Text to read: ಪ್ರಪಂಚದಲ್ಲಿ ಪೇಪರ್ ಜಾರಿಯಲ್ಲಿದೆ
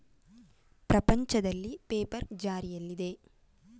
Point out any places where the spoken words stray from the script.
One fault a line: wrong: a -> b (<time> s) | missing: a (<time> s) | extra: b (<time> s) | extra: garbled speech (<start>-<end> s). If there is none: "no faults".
no faults